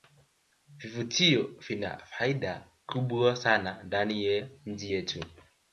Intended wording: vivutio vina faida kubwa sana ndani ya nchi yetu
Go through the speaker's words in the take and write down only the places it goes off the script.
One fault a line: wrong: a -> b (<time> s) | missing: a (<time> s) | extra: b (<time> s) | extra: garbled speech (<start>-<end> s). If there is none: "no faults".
no faults